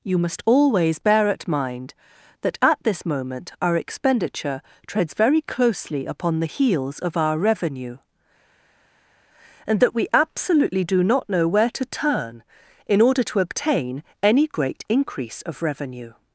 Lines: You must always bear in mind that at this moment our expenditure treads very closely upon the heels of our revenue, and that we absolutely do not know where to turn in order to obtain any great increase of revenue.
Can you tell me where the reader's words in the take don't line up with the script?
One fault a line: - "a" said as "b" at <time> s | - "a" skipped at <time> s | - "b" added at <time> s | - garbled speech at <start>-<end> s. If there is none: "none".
- "in" said as "at" at 1.3 s